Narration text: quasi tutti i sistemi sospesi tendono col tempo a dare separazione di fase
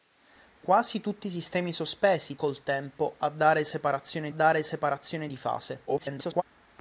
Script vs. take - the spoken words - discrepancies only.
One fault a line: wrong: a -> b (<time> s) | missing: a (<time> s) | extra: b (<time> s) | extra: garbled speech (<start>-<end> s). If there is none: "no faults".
missing: tendono (2.4 s)
extra: dare separazione (4.3 s)
extra: garbled speech (5.9-6.4 s)